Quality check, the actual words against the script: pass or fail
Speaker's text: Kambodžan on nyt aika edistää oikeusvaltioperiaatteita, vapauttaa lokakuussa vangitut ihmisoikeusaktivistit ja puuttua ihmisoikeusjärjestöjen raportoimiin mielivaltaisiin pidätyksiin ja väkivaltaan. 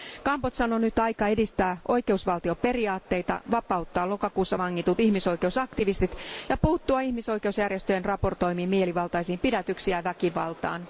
pass